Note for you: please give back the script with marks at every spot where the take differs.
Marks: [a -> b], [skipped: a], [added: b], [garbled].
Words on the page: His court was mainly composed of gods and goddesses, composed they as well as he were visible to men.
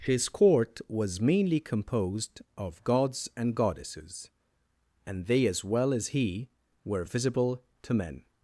His court was mainly composed of gods and goddesses, [composed -> and] they as well as he were visible to men.